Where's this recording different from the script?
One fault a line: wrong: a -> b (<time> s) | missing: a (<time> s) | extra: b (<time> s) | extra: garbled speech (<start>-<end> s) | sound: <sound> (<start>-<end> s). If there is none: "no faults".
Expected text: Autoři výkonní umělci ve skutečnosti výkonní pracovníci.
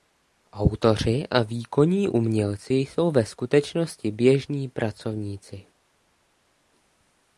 extra: a (1.3 s)
extra: jsou (2.7 s)
wrong: výkonní -> běžní (4.1 s)